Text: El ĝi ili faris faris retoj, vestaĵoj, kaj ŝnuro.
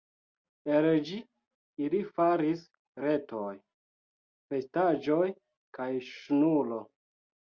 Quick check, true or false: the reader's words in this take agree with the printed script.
false